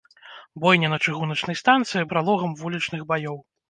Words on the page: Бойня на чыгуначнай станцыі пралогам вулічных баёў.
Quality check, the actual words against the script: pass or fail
pass